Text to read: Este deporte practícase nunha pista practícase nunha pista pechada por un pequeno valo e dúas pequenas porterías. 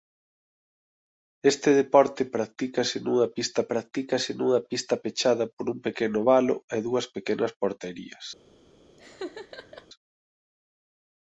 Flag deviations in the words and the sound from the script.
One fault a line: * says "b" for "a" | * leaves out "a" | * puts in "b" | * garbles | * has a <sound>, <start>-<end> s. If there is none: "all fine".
* has a laugh, 9.0-9.9 s